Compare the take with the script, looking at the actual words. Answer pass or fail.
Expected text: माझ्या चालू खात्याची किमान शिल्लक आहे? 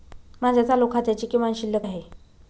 pass